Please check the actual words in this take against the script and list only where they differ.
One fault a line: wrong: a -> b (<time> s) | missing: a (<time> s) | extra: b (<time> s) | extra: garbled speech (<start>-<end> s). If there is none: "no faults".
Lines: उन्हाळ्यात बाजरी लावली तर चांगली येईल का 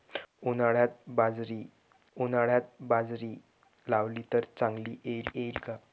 extra: उन्हाळ्यात बाजरी (2.2 s)
extra: येईल (5.3 s)